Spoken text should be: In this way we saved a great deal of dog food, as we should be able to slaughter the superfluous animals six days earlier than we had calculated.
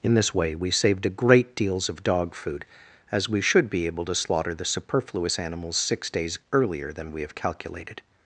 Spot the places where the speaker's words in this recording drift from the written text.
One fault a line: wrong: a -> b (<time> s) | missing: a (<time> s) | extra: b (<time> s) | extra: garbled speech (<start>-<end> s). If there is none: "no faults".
wrong: deal -> deals (1.6 s)
wrong: had -> have (7.2 s)